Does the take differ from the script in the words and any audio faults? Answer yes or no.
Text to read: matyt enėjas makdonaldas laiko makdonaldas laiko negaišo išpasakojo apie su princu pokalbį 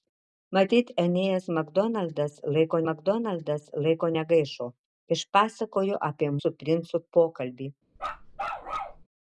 yes